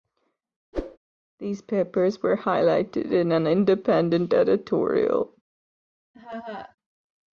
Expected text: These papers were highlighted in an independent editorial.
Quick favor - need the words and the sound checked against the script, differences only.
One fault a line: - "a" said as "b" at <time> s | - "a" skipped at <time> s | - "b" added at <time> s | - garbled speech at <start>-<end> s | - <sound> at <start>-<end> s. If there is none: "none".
- whoosh at 0.7-1.0 s
- laugh at 6.1-6.8 s